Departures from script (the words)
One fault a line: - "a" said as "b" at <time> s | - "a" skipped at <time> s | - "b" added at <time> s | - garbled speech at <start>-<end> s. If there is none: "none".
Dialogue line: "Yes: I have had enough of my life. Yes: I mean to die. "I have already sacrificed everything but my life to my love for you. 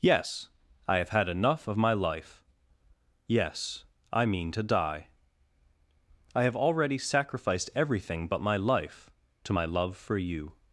none